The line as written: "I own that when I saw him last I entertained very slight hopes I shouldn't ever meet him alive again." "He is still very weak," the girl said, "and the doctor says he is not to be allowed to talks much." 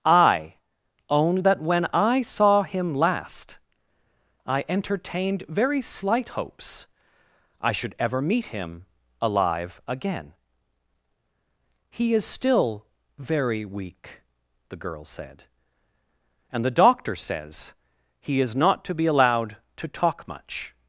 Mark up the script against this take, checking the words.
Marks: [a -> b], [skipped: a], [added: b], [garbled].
"I own that when I saw him last I entertained very slight hopes I [shouldn't -> should] ever meet him alive again." "He is still very weak," the girl said, "and the doctor says he is not to be allowed to [talks -> talk] much."